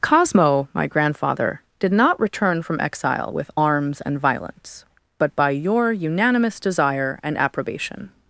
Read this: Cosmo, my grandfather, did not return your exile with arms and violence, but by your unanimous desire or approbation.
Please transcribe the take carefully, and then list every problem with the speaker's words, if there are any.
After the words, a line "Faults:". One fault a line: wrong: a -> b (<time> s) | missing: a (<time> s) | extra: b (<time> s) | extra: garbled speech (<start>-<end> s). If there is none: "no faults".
Cosmo, my grandfather, did not return from exile with arms and violence, but by your unanimous desire and approbation.
Faults:
wrong: your -> from (2.6 s)
wrong: or -> and (7.2 s)